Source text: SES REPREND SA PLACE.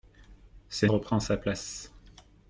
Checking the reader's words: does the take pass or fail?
pass